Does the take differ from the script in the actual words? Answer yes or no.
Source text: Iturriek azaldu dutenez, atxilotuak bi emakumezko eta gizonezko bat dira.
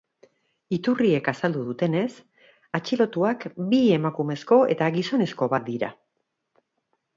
no